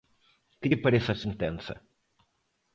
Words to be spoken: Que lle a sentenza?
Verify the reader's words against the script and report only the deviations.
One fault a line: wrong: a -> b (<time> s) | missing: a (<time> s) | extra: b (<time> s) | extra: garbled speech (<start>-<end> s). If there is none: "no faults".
extra: parece (0.8 s)